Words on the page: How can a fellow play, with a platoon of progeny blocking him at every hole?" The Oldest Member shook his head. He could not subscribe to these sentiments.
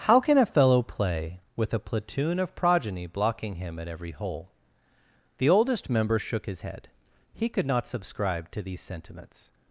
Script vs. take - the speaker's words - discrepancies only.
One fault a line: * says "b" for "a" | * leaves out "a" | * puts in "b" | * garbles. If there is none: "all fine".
all fine